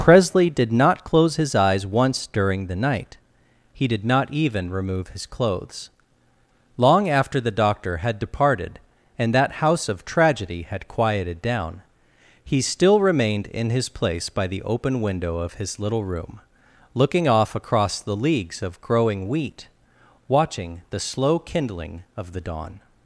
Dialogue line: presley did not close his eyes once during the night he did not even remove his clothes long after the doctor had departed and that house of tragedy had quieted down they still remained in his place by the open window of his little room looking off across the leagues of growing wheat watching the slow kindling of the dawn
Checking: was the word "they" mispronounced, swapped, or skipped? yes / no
yes